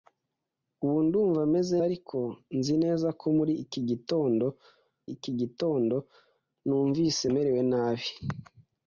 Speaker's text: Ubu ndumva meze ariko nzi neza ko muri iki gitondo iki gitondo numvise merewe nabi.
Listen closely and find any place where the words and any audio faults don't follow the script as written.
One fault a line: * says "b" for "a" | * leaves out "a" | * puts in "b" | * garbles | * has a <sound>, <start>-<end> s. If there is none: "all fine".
all fine